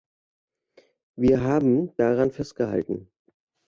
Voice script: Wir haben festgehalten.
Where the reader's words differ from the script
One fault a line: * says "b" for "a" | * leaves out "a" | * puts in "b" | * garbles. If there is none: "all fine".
* puts in "daran"